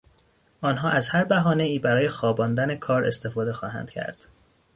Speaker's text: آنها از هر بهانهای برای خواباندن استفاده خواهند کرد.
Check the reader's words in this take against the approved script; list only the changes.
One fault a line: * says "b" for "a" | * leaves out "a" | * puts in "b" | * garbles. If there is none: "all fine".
* puts in "کار"